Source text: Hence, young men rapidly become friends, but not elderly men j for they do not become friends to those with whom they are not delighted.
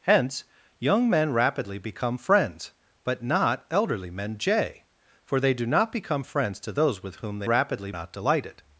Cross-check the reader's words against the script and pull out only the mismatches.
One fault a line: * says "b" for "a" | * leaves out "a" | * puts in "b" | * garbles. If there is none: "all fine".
* says "rapidly" for "are"